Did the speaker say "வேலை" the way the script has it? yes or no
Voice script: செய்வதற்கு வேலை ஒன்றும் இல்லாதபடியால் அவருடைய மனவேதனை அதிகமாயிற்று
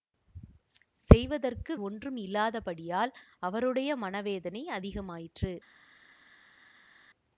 no